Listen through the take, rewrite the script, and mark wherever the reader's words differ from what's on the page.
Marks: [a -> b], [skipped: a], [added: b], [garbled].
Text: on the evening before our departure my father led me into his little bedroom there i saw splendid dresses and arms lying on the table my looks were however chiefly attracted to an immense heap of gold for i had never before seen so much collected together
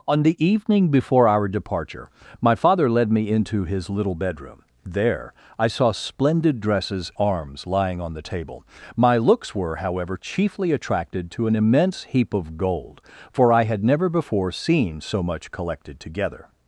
on the evening before our departure my father led me into his little bedroom there i saw splendid dresses [skipped: and] arms lying on the table my looks were however chiefly attracted to an immense heap of gold for i had never before seen so much collected together